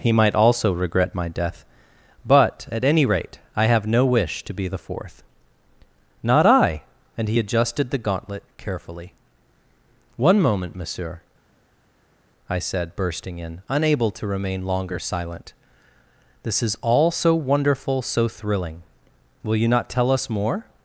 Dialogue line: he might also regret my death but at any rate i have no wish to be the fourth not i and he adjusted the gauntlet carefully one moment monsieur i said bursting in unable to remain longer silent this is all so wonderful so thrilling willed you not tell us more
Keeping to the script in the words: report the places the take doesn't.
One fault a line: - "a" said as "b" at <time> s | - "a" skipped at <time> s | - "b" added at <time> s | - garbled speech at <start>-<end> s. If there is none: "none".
- "willed" said as "will" at 19.4 s